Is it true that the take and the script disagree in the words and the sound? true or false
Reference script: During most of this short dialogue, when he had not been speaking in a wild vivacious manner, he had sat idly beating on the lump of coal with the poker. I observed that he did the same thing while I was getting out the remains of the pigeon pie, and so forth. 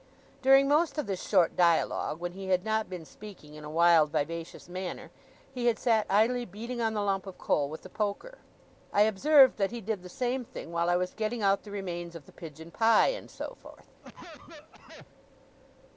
true